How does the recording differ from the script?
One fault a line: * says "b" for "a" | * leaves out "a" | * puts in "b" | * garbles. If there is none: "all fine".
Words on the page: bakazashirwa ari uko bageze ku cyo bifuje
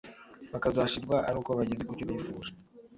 all fine